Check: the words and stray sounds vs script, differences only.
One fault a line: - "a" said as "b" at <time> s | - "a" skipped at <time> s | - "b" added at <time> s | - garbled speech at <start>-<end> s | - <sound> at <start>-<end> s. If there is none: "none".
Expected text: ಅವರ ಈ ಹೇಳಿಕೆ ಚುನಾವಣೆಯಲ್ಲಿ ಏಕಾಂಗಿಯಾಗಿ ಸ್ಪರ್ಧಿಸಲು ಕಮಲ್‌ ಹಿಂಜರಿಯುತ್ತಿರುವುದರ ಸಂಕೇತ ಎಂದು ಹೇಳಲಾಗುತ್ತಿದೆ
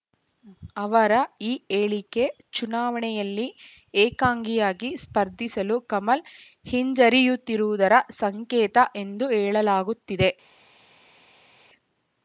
none